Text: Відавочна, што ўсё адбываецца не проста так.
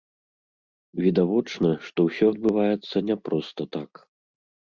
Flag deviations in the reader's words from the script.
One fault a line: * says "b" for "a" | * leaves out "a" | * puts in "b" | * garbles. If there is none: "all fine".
all fine